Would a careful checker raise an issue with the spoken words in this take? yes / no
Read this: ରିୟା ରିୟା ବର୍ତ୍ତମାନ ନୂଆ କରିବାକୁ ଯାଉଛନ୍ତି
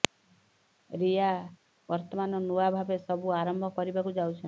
yes